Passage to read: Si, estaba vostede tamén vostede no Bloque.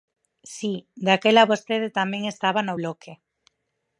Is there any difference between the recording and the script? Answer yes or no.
yes